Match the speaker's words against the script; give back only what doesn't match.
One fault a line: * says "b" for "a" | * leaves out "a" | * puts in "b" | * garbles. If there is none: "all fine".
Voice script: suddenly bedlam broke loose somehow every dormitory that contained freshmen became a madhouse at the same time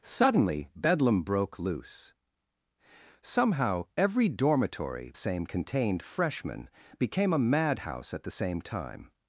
* says "same" for "that"